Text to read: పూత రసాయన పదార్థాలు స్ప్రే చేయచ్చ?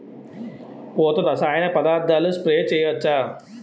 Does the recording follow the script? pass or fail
pass